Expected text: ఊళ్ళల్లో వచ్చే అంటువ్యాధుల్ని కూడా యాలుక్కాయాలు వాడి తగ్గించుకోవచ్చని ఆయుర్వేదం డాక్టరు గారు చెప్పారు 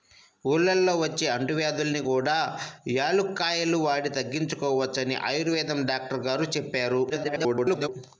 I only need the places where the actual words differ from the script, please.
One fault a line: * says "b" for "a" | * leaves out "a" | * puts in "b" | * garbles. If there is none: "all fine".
* garbles